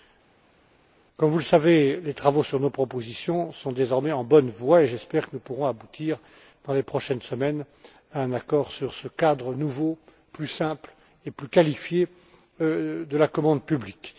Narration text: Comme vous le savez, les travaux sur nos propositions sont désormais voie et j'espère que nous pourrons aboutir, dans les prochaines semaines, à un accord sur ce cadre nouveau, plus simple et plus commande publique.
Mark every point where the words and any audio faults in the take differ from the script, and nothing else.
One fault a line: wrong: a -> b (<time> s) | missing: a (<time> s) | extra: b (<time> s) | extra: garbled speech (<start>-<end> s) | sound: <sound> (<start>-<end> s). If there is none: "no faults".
extra: en bonne (4.1 s)
extra: qualifié de la (11.5 s)